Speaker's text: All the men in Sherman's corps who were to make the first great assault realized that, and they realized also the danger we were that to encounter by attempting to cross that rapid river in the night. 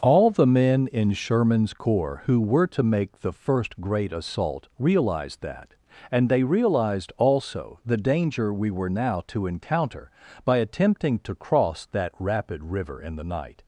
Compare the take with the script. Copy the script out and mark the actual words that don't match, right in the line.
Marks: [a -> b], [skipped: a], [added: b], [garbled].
All the men in Sherman's corps who were to make the first great assault realized that, and they realized also the danger we were [that -> now] to encounter by attempting to cross that rapid river in the night.